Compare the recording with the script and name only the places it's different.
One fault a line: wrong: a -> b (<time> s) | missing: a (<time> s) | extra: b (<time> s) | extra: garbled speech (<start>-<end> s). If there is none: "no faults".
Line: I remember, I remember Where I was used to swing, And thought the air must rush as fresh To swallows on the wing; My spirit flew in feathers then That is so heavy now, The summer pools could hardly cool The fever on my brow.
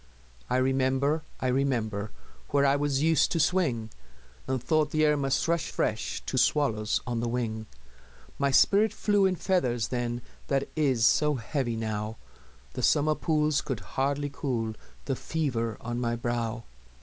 missing: as (5.7 s)